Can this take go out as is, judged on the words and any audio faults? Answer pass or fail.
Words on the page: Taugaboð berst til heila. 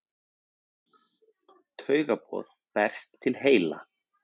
pass